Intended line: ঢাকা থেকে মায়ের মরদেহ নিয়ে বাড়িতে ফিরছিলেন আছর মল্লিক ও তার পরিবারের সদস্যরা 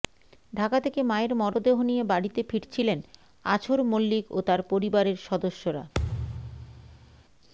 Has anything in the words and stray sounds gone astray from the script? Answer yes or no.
yes